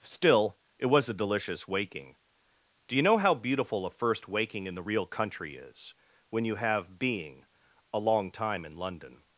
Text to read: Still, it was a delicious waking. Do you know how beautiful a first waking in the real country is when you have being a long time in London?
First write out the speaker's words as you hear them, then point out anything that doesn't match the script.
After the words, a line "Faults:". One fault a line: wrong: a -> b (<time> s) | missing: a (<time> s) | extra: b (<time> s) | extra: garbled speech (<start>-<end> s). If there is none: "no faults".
Still, it was a delicious waking. Do you know how beautiful a first waking in the real country is when you have being a long time in London?
Faults:
no faults